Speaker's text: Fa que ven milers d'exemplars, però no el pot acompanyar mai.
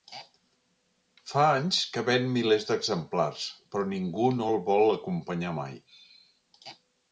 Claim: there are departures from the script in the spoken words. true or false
true